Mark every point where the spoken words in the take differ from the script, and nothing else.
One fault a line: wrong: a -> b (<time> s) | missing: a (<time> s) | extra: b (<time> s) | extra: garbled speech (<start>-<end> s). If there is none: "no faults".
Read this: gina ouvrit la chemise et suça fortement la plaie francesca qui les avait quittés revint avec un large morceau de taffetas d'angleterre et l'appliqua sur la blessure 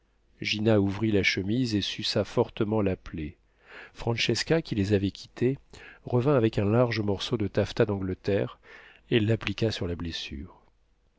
no faults